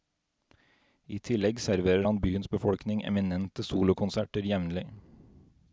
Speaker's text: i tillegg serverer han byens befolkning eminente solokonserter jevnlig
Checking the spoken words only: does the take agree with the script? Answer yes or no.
yes